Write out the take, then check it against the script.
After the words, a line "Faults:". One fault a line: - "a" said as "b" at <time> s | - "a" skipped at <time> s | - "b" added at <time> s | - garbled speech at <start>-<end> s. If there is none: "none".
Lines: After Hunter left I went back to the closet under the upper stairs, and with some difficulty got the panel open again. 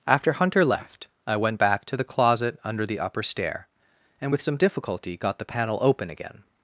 After Hunter left I went back to the closet under the upper stair, and with some difficulty got the panel open again.
Faults:
- "stairs" said as "stair" at 3.2 s